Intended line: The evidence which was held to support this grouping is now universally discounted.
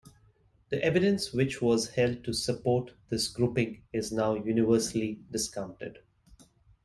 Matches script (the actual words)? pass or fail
pass